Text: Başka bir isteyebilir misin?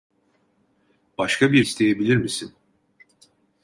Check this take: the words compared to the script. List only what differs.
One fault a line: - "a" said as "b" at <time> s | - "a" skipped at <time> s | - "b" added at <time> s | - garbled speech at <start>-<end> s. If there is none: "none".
none